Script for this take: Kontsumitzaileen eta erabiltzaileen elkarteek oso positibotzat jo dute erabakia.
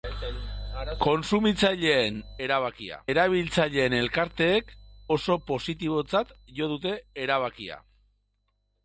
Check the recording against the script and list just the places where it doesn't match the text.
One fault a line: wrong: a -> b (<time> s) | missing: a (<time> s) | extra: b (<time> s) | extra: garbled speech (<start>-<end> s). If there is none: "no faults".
wrong: eta -> erabakia (2.5 s)